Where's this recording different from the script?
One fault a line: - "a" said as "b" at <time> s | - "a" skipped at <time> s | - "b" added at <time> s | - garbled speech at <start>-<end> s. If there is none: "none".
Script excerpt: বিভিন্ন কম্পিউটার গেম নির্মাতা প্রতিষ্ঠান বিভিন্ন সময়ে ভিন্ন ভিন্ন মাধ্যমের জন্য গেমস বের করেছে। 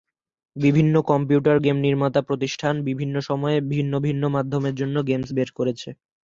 none